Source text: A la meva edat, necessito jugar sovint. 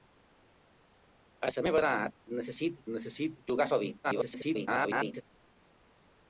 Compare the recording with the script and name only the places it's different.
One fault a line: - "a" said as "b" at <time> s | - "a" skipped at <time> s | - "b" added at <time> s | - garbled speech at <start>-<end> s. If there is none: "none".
- "necessito" added at 3.0 s
- garbled speech at 4.0-5.2 s